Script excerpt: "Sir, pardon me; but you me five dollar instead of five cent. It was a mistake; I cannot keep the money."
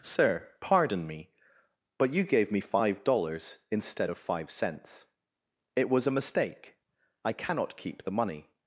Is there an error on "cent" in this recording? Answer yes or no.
yes